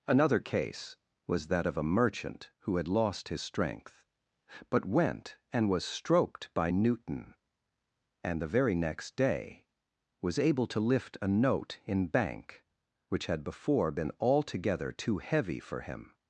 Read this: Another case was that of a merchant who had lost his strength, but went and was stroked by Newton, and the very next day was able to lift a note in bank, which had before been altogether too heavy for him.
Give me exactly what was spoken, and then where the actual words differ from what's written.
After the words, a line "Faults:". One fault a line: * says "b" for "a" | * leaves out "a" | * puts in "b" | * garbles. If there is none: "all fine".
Another case was that of a merchant who had lost his strength, but went and was stroked by Newton, and the very next day was able to lift a note in bank, which had before been altogether too heavy for him.
Faults:
all fine